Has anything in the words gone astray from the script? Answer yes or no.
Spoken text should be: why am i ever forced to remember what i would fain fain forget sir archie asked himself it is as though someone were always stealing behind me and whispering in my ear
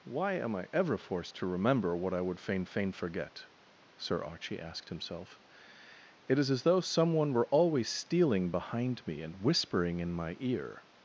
no